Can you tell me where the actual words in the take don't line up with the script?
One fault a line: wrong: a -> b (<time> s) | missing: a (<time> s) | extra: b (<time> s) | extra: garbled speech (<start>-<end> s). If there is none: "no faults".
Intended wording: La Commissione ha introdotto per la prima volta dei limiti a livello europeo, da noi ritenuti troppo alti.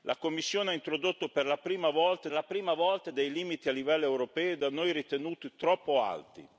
extra: la prima volta (2.3 s)